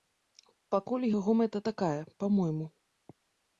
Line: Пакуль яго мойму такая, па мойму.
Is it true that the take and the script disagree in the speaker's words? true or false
true